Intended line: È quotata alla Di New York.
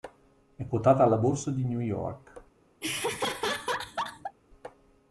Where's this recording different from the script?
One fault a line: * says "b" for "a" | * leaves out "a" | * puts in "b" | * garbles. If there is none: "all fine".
* puts in "Borsa"